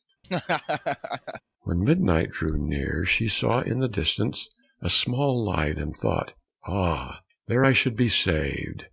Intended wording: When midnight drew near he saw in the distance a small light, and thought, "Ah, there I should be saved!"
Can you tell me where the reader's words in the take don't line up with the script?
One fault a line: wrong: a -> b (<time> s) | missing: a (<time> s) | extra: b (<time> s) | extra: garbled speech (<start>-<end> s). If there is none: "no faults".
wrong: he -> she (3.0 s)